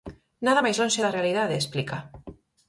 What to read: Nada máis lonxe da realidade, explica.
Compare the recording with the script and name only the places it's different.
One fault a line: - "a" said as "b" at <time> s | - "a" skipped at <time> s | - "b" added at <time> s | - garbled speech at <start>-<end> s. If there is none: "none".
none